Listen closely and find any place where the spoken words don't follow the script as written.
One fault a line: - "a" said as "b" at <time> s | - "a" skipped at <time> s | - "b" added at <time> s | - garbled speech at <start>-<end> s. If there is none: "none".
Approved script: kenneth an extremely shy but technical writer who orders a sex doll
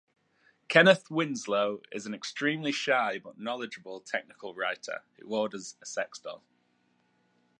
- "winslow is" added at 1.1 s
- "knowledgeable" added at 3.4 s